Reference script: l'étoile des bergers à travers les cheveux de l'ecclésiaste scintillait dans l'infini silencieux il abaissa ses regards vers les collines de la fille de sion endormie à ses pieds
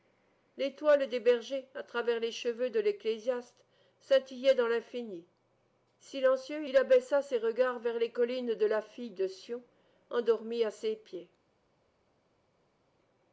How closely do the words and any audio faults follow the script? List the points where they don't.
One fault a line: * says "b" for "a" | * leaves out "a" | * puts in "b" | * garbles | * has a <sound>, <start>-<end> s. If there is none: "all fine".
all fine